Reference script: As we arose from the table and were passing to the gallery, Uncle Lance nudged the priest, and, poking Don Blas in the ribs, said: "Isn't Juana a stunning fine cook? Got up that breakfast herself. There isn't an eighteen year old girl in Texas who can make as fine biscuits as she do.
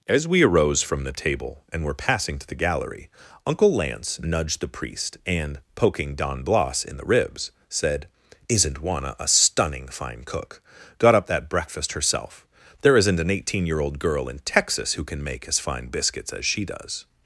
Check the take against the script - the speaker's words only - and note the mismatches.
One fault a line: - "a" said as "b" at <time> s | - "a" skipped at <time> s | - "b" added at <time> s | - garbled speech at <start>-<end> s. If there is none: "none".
- "do" said as "does" at 16.6 s